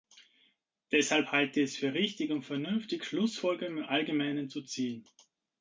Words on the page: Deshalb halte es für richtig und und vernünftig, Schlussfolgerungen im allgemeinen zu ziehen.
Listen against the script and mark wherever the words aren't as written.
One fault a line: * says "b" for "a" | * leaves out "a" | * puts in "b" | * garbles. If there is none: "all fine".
* puts in "ich"
* leaves out "und"